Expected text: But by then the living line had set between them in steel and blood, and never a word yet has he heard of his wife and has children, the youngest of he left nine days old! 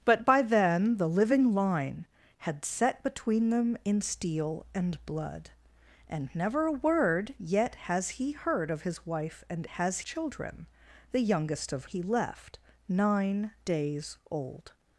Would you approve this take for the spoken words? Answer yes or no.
yes